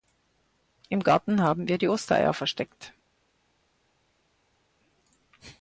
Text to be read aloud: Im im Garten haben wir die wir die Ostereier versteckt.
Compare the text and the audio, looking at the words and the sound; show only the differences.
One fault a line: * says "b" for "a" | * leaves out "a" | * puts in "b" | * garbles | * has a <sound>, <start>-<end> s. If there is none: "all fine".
* leaves out "im"
* leaves out "wir die"